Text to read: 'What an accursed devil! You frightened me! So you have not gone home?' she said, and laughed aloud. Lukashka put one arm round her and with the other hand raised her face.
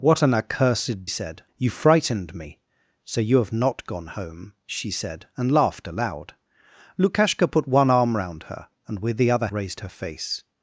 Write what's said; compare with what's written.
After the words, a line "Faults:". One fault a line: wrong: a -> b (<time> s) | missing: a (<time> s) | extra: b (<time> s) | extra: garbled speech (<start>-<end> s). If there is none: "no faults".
'What an accursed said! You frightened me! So you have not gone home?' she said, and laughed aloud. Lukashka put one arm round her and with the other raised her face.
Faults:
wrong: devil -> said (1.1 s)
missing: hand (9.5 s)